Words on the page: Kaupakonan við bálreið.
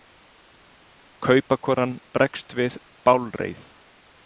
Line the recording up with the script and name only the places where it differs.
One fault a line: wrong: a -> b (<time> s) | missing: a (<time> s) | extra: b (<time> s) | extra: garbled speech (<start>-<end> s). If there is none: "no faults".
extra: bregst (2.2 s)